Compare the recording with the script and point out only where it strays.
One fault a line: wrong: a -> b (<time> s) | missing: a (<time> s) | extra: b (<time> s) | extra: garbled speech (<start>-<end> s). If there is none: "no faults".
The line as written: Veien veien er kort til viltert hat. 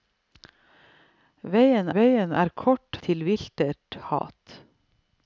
no faults